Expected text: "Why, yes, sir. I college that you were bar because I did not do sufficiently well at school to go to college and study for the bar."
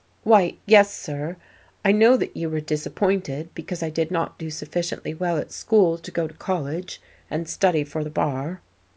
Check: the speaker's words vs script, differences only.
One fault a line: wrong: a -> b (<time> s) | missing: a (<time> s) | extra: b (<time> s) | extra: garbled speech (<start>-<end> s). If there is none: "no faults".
wrong: college -> know (1.9 s)
wrong: bar -> disappointed (2.6 s)